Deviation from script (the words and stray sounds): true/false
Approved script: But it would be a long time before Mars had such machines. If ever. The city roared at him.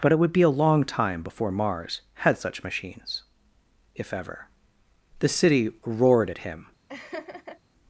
true